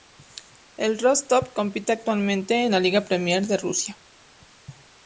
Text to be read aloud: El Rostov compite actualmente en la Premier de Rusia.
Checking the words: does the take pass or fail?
fail